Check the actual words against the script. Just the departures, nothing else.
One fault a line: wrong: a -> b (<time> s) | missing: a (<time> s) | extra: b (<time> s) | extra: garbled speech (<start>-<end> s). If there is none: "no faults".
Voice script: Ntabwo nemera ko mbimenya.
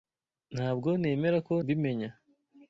no faults